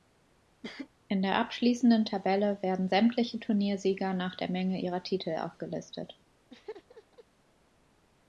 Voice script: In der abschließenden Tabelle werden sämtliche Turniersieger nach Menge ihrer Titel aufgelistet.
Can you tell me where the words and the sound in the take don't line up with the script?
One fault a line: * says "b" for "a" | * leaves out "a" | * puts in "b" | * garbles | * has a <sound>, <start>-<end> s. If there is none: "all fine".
* has a cough, 0.6-0.9 s
* puts in "der"
* has a laugh, 6.5-7.2 s